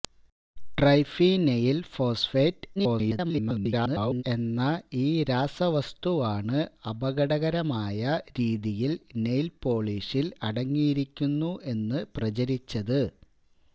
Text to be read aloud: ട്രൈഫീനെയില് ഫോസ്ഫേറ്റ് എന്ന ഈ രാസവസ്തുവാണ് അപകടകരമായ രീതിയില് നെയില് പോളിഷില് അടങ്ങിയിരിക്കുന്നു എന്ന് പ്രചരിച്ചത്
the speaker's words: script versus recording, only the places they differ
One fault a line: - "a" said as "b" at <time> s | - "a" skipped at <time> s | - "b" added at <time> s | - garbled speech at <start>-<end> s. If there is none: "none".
- garbled speech at 2.8-4.2 s